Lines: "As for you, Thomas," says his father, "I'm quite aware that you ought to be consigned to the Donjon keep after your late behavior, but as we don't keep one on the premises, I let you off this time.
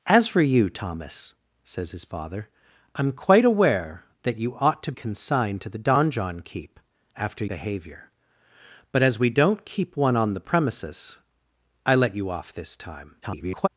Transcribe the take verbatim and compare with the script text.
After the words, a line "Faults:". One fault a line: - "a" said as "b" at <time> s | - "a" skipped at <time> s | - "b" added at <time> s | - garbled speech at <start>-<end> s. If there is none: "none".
"As for you, Thomas," says his father, "I'm quite aware that you ought to consigned to the Donjon keep after behavior, but as we don't keep one on the premises, I let you off this time. [garbled]
Faults:
- "be" skipped at 4.9 s
- "your late" skipped at 7.4 s
- garbled speech at 13.2-13.7 s